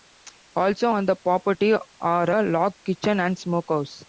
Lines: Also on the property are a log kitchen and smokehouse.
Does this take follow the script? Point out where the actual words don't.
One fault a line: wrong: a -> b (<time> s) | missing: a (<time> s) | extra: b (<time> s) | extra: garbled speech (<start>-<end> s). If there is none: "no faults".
no faults